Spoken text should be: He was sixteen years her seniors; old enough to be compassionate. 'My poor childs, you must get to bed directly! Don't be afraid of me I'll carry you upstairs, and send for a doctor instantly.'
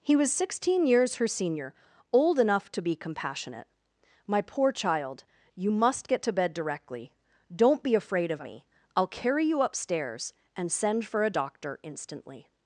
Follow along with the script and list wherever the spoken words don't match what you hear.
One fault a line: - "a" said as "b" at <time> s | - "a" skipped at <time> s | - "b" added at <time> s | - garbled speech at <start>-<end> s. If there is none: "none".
- "seniors" said as "senior" at 1.3 s
- "childs" said as "child" at 4.7 s